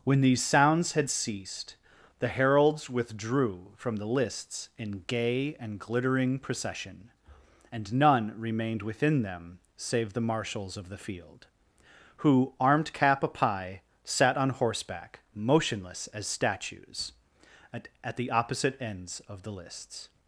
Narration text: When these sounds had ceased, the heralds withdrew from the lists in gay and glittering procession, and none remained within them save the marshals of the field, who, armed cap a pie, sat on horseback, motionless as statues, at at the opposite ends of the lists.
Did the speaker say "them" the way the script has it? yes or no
yes